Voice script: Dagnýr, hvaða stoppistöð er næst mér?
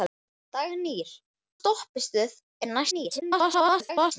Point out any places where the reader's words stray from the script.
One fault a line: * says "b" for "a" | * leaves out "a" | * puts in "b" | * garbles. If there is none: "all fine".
* leaves out "hvaða"
* garbles